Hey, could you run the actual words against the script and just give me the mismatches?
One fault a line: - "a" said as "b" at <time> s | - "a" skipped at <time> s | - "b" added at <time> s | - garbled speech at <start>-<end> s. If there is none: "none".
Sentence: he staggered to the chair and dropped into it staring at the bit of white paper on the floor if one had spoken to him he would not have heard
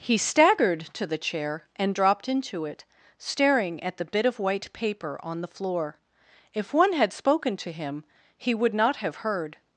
none